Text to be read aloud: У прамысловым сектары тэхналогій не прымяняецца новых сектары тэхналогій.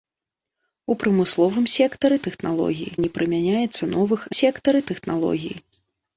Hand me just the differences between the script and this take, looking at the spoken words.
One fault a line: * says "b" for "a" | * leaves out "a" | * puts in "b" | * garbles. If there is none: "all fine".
all fine